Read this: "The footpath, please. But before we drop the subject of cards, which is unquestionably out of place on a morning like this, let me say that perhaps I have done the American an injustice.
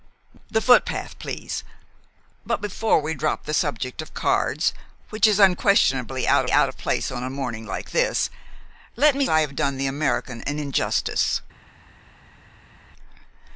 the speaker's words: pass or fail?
fail